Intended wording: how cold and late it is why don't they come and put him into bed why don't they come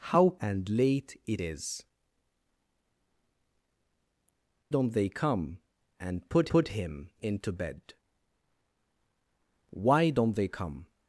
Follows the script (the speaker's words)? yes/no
no